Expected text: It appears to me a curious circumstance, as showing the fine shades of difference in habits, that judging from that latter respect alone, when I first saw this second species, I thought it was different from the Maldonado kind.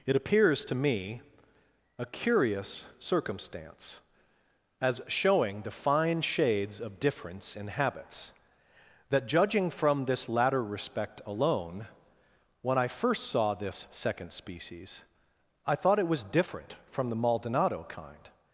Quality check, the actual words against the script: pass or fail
fail